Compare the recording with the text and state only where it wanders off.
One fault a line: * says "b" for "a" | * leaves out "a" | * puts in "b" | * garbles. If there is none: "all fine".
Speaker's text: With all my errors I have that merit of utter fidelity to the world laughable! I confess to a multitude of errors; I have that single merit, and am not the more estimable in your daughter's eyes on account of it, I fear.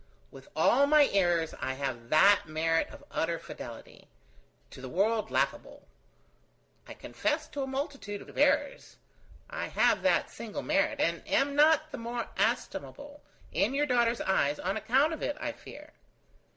* puts in "of"